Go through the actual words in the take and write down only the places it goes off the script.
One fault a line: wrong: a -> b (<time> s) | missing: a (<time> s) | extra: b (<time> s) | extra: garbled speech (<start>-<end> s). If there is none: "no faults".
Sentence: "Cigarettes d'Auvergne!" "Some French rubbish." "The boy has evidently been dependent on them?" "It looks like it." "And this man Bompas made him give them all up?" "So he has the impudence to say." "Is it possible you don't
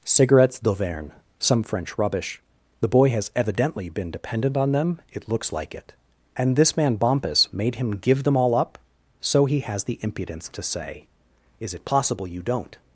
no faults